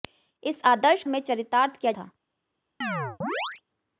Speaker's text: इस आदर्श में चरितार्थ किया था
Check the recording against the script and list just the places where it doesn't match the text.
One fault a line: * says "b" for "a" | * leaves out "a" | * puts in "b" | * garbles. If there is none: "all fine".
all fine